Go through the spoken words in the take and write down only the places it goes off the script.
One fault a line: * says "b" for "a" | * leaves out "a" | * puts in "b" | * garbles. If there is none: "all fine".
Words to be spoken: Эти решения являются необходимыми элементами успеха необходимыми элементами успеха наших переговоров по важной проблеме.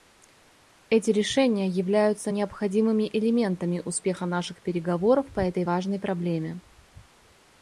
* leaves out "необходимыми элементами успеха"
* puts in "этой"